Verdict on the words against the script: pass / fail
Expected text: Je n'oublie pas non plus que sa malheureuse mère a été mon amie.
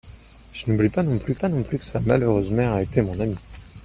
fail